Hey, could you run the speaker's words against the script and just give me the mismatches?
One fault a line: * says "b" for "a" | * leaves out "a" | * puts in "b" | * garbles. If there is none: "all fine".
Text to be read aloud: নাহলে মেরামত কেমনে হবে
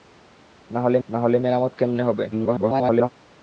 * puts in "নাহলে"
* garbles